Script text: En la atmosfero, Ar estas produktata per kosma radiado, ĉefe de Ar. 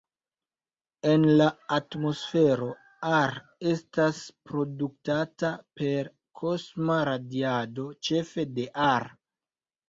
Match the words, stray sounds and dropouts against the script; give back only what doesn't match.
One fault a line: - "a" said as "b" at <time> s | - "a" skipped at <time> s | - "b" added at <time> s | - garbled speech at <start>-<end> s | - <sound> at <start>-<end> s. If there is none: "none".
none